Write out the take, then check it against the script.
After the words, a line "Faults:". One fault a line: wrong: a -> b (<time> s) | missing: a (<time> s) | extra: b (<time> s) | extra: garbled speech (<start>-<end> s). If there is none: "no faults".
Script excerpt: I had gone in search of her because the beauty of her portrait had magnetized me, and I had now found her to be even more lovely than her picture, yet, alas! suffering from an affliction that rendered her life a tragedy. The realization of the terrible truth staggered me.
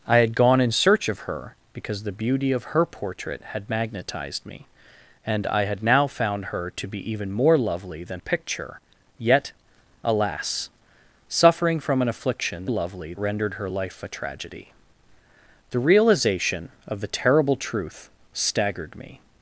I had gone in search of her because the beauty of her portrait had magnetized me, and I had now found her to be even more lovely than picture, yet, alas! suffering from an affliction lovely rendered her life a tragedy. The realization of the terrible truth staggered me.
Faults:
missing: her (8.2 s)
wrong: that -> lovely (12.7 s)